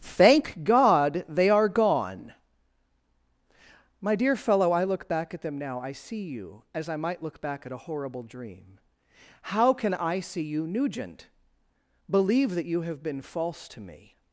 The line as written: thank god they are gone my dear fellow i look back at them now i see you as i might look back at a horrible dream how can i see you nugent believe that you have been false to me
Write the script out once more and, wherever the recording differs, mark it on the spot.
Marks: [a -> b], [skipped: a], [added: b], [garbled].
thank god they are gone my dear fellow i look back at them now i see you as i might look back at a horrible dream how can i see you nugent believe that you have been false to me